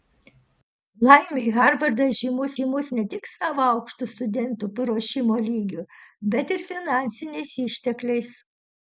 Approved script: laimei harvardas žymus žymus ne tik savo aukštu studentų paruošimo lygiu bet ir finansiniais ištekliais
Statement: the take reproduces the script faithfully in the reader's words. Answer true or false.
true